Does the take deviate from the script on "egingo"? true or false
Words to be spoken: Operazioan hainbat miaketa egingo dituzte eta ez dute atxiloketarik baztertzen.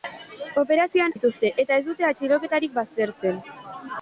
true